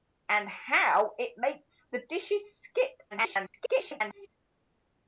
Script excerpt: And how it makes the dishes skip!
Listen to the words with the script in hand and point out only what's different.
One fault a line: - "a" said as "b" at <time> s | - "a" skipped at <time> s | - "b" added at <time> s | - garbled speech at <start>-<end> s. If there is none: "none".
- garbled speech at 3.1-4.3 s